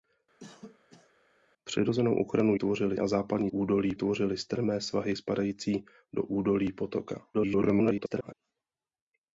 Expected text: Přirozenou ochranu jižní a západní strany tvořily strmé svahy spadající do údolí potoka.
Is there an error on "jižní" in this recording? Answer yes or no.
yes